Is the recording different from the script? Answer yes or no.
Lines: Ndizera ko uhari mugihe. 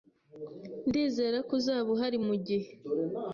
yes